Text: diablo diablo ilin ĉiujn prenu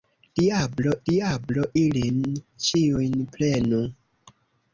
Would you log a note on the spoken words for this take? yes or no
no